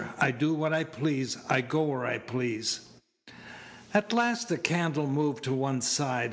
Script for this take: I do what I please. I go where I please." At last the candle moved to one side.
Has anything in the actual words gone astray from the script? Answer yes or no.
no